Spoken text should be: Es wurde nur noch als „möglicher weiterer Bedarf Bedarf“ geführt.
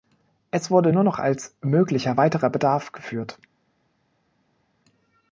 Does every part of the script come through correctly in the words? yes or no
no